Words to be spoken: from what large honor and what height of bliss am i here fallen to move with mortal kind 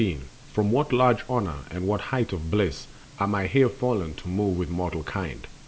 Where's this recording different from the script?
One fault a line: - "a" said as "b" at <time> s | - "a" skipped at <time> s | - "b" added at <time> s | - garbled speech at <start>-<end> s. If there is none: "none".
none